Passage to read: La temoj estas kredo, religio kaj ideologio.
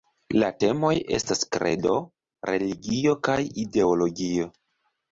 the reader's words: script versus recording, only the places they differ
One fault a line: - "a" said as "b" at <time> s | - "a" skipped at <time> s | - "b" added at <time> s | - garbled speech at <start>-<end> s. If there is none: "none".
none